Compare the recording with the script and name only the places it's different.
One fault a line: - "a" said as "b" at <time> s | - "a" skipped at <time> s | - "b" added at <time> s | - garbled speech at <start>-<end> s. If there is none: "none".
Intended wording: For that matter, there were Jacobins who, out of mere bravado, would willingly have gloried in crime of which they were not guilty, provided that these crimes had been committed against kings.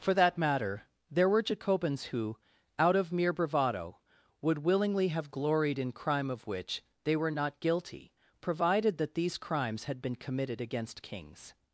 none